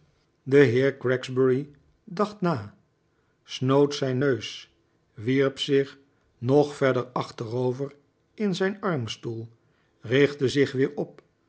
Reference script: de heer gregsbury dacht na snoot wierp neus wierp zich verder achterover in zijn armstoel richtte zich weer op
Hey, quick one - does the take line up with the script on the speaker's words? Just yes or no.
no